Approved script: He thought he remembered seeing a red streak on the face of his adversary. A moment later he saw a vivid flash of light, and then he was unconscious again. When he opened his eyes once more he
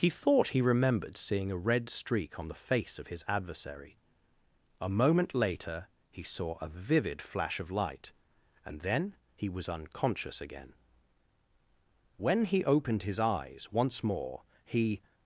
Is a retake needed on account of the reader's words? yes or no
no